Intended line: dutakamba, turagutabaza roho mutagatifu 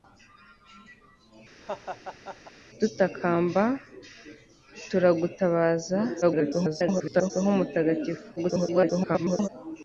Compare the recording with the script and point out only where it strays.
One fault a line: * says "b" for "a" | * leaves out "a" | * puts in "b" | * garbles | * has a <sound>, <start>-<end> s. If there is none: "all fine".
* has a laugh, 1.6-2.5 s
* garbles
* garbles